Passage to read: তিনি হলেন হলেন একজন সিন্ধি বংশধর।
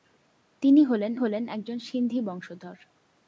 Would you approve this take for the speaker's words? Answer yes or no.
yes